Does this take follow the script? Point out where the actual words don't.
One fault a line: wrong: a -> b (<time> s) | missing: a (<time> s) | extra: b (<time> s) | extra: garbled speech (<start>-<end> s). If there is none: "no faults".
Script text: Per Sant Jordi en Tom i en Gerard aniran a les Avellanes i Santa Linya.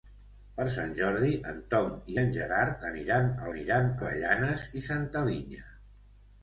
wrong: les -> aniran (3.5 s)